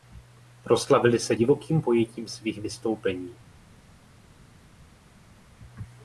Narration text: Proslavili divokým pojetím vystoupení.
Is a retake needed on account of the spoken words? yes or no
yes